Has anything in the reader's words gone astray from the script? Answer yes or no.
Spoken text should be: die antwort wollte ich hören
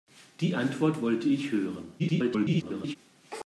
yes